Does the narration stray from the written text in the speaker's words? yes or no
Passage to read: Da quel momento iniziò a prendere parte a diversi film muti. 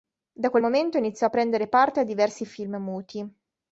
no